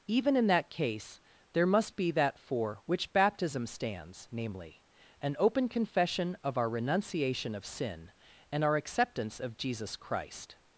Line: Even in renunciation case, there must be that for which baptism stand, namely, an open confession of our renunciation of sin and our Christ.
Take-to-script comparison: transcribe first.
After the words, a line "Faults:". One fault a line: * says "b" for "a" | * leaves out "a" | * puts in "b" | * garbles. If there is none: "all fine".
Even in that case, there must be that for which baptism stands, namely, an open confession of our renunciation of sin and our acceptance of Jesus Christ.
Faults:
* says "that" for "renunciation"
* says "stands" for "stand"
* puts in "acceptance of Jesus"